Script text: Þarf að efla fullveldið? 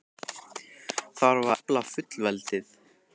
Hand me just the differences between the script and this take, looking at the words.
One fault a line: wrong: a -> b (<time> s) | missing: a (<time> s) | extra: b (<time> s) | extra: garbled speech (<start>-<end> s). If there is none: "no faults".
missing: að (1.5 s)